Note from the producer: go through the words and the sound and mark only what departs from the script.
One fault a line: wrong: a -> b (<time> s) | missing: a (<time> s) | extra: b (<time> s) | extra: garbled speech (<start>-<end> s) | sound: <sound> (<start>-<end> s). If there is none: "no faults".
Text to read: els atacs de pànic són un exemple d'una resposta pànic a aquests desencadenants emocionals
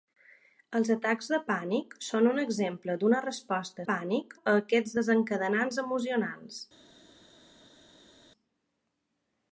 no faults